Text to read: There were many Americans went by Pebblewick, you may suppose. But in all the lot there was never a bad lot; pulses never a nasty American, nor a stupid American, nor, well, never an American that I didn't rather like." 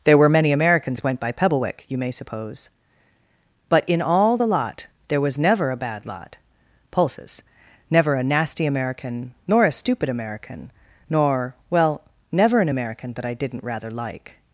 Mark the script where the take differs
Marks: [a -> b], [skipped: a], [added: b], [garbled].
There were many Americans went by Pebblewick, you may suppose. But in all the lot there was never a bad lot; pulses never a nasty American, nor a stupid American, nor, well, never an American that I didn't rather like."